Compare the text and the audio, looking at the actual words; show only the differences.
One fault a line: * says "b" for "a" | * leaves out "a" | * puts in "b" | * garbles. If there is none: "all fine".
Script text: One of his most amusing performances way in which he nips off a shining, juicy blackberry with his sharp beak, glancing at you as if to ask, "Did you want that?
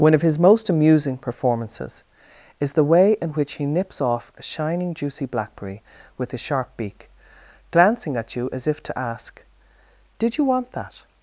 * puts in "is the"